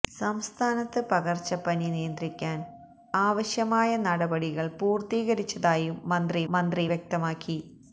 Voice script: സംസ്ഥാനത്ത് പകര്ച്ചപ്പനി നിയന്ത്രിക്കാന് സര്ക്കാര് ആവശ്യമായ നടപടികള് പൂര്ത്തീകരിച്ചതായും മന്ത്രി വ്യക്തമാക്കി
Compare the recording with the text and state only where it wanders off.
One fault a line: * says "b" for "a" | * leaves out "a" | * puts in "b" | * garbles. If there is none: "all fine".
* leaves out "സര്ക്കാര്"
* puts in "മന്ത്രി"